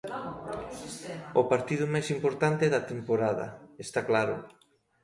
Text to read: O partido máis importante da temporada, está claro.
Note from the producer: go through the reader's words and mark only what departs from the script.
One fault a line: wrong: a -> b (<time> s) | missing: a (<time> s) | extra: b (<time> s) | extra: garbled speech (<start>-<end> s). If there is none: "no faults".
no faults